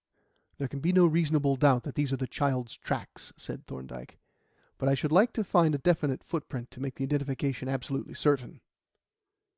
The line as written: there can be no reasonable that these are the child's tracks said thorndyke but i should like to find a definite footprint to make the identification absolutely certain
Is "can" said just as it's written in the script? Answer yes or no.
yes